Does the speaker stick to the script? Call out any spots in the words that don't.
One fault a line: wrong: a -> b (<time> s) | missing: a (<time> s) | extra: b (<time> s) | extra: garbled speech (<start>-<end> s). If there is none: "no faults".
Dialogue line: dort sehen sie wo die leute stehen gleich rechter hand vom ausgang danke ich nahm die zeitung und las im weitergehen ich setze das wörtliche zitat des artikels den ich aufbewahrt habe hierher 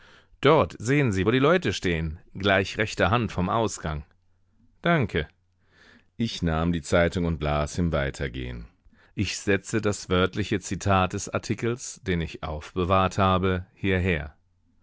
no faults